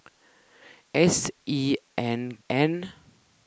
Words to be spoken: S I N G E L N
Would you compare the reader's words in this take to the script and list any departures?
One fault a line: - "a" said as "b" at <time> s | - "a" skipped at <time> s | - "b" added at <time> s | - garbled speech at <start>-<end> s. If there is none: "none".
- "G E L" skipped at 2.4 s